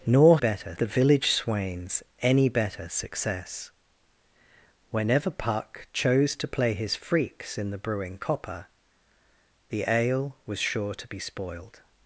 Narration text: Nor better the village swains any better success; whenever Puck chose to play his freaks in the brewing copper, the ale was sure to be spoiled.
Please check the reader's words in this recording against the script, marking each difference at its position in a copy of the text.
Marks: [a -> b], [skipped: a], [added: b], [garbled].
Nor better the village swains any better success; whenever Puck chose to play his freaks in the brewing copper, the ale was sure to be spoiled.